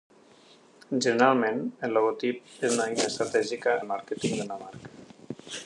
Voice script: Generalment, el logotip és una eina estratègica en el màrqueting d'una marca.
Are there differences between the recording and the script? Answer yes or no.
yes